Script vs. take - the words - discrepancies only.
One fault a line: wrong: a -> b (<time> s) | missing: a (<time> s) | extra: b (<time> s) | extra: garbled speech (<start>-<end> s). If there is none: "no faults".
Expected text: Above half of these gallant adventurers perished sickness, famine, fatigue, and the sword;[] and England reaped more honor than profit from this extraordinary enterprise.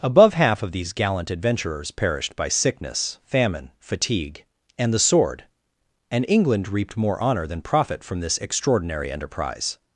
extra: by (2.4 s)